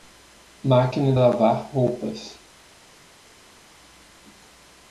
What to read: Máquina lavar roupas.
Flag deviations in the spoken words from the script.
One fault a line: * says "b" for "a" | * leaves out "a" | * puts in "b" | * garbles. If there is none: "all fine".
all fine